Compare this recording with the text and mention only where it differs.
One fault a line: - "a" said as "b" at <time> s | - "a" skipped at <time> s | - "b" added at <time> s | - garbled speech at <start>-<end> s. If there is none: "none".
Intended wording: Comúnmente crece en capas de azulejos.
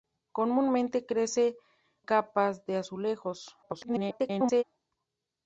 - "en" skipped at 1.6 s
- garbled speech at 3.6-4.6 s